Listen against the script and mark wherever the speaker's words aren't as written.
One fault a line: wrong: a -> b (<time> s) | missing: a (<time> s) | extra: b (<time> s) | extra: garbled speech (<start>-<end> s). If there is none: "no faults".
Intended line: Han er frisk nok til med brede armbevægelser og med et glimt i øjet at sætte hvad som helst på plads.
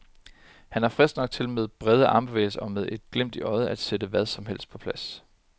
no faults